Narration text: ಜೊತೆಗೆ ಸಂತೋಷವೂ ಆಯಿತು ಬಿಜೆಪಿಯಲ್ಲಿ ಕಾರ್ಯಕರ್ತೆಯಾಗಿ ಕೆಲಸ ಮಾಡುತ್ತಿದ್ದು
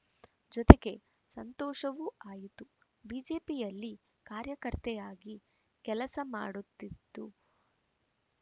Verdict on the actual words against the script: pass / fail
pass